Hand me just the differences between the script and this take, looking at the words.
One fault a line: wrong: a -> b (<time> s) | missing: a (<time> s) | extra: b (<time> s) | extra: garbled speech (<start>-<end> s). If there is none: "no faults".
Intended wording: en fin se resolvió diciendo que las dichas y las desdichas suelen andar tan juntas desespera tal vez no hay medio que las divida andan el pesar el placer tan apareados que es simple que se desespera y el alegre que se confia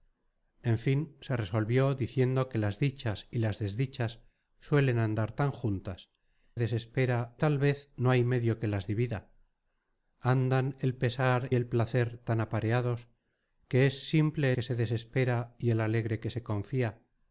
no faults